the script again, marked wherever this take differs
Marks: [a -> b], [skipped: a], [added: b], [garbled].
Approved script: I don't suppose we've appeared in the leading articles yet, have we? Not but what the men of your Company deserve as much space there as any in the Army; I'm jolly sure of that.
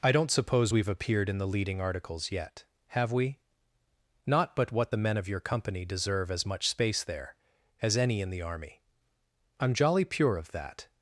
I don't suppose we've appeared in the leading articles yet, have we? Not but what the men of your Company deserve as much space there as any in the Army; I'm jolly [sure -> pure] of that.